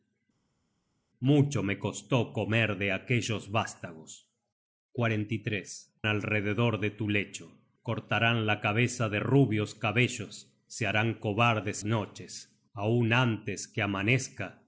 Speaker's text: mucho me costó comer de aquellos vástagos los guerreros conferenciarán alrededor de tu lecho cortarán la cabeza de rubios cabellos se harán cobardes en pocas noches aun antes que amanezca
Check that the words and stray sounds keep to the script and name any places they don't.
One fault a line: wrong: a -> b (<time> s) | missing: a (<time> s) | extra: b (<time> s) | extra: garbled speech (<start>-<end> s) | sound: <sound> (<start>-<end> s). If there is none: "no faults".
missing: los guerreros conferenciarán (4.3 s)
missing: en pocas (11.8 s)